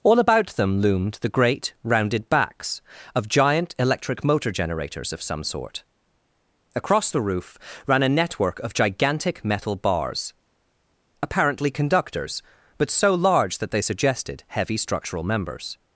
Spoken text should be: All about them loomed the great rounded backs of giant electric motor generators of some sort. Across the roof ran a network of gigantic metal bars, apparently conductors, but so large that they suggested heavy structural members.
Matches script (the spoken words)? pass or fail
pass